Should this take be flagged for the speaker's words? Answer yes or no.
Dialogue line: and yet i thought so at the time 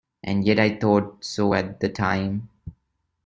no